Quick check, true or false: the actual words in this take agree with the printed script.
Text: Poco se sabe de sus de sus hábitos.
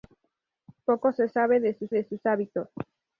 true